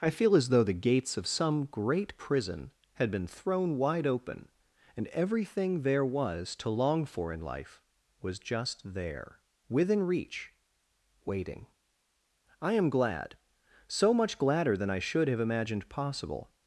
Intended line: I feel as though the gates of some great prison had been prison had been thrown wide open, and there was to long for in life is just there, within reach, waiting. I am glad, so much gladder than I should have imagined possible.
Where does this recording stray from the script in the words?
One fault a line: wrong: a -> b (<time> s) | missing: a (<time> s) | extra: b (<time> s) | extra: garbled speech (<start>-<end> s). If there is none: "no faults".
missing: prison had been (3.3 s)
extra: everything (5.1 s)
wrong: is -> was (8.2 s)